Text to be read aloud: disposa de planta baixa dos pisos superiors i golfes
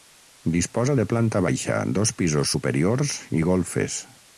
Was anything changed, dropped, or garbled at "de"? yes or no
no